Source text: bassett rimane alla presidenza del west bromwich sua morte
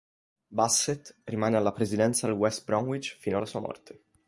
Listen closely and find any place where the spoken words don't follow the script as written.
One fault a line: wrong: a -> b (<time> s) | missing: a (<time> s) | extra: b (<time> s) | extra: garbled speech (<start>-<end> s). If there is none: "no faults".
extra: fino alla (3.2 s)